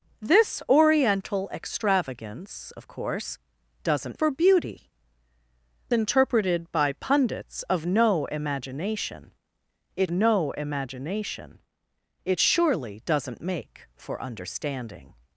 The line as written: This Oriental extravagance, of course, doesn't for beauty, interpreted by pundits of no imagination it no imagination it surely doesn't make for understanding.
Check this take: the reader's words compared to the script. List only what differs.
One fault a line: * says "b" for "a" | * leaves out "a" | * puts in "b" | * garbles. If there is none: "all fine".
all fine